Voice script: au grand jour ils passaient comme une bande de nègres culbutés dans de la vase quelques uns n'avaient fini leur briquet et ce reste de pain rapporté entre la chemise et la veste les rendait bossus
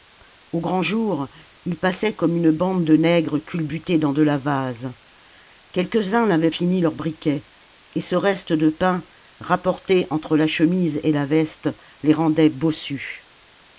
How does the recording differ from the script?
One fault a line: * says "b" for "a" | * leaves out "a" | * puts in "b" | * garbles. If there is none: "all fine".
all fine